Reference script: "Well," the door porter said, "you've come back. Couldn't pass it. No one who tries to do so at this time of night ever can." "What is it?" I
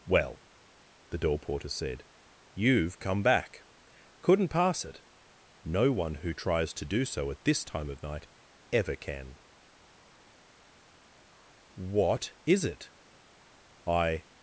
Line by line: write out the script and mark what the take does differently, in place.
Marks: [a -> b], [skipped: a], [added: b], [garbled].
"Well," the door porter said, "you've come back. Couldn't pass it. No one who tries to do so at this time of night ever can." "What is it?" I